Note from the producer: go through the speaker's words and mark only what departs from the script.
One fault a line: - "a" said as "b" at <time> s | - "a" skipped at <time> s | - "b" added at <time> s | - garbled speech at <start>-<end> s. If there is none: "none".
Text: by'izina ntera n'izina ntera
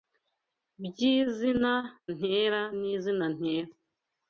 none